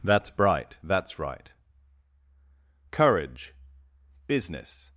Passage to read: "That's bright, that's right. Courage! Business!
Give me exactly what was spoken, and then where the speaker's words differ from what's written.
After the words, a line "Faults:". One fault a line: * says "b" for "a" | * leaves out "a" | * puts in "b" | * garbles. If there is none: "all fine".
"That's bright, that's right. Courage! Business!
Faults:
all fine